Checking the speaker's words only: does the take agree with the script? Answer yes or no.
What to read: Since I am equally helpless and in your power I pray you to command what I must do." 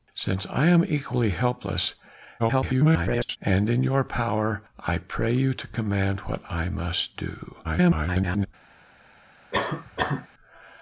no